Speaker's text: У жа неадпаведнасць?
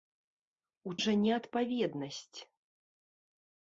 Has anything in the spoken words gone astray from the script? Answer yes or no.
no